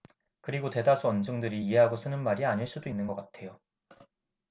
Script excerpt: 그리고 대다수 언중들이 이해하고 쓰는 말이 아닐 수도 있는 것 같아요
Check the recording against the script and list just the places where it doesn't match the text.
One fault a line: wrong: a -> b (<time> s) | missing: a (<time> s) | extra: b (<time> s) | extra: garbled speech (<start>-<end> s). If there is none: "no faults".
no faults